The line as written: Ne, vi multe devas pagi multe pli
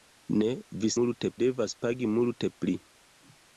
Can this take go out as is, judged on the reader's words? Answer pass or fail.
pass